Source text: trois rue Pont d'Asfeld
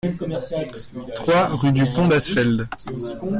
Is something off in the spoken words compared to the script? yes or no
yes